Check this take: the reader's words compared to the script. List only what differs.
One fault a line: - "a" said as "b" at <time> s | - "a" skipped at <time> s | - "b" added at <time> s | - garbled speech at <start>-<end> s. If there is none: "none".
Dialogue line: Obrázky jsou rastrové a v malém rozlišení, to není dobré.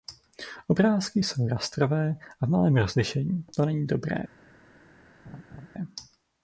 none